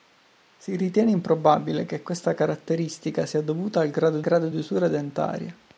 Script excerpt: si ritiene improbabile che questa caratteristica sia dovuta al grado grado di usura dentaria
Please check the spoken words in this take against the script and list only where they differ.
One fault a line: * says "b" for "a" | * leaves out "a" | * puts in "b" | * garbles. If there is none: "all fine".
all fine